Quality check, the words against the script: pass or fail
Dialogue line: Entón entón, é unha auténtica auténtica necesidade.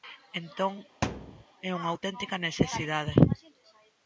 fail